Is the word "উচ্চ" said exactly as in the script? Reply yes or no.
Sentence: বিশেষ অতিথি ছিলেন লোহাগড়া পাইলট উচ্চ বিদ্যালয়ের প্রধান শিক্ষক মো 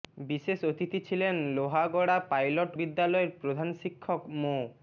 no